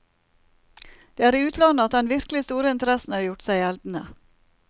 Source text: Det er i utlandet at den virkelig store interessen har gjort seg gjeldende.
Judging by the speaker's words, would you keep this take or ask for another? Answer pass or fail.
pass